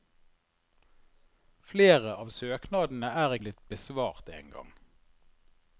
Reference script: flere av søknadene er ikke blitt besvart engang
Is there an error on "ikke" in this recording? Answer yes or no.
yes